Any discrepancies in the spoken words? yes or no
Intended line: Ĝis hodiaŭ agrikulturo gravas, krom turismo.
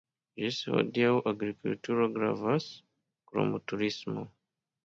no